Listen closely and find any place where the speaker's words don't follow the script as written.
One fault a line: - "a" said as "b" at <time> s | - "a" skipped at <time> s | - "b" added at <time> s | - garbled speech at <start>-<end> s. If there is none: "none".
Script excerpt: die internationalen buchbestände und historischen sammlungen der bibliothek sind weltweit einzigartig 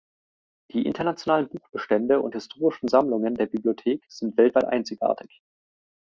none